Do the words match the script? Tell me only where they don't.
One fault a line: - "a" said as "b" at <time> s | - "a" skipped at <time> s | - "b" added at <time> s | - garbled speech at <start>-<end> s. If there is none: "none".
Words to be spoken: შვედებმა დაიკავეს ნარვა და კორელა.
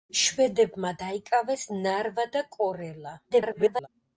- garbled speech at 3.3-3.9 s